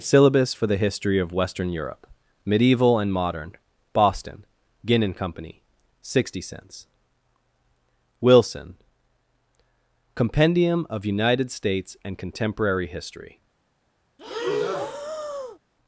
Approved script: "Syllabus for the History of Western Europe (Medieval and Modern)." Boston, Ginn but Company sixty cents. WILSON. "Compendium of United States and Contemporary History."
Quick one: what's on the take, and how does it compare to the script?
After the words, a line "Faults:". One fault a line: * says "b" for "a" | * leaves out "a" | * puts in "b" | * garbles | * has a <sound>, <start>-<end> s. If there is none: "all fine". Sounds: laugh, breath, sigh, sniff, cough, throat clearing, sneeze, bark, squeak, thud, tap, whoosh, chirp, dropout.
"Syllabus for the History of Western Europe (Medieval and Modern)." Boston, Ginn and Company sixty cents. WILSON. "Compendium of United States and Contemporary History."
Faults:
* says "and" for "but"
* has a breath, 14.2-15.6 s